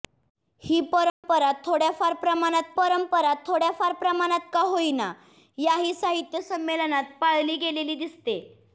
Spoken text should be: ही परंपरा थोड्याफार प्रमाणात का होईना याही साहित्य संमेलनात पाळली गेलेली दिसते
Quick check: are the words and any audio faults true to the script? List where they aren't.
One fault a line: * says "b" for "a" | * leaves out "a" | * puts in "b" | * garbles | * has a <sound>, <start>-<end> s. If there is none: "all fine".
* has a dropout, 1.1-1.2 s
* puts in "परंपरा थोड्याफार प्रमाणात"